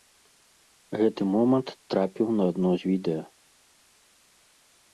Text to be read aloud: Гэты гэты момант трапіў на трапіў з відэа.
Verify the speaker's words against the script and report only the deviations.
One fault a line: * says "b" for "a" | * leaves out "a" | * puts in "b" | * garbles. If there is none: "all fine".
* leaves out "гэты"
* says "адно" for "трапіў"